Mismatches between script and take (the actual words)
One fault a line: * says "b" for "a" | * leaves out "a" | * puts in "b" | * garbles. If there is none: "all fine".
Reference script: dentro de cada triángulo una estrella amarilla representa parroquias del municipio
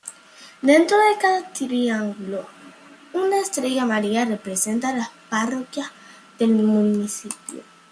* puts in "las"